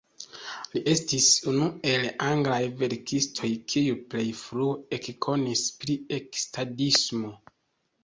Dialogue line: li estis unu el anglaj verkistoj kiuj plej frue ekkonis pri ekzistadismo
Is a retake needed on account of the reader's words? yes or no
no